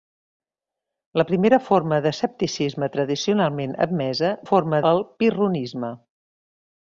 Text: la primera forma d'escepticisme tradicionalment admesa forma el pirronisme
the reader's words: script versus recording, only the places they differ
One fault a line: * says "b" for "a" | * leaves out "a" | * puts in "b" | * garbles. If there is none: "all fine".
all fine